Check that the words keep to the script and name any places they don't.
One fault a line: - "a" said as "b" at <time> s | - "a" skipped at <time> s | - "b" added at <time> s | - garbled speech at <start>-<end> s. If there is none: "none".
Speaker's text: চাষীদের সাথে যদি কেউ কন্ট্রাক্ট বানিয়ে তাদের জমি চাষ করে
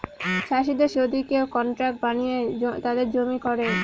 - "সাথে" skipped at 0.9 s
- "চাষ" skipped at 3.4 s